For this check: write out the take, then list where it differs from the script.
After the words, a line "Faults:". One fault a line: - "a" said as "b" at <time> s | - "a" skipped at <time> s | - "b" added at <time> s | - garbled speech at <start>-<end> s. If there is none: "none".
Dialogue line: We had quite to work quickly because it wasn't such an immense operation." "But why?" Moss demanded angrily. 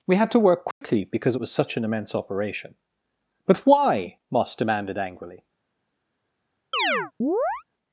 We had to work quickly because it was such an immense operation." "But why?" Moss demanded angrily.
Faults:
- "quite" skipped at 0.3 s
- "wasn't" said as "was" at 1.4 s